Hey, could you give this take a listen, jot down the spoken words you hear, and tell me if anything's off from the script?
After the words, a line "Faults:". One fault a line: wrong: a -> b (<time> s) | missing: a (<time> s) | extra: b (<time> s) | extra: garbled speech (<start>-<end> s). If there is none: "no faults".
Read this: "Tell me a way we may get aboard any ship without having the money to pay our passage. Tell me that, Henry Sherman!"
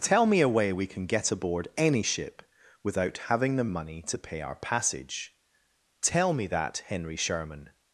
"Tell me a way we can get aboard any ship without having the money to pay our passage. Tell me that, Henry Sherman!"
Faults:
wrong: may -> can (0.9 s)